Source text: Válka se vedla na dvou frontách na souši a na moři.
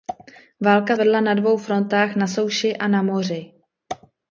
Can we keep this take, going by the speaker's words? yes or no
no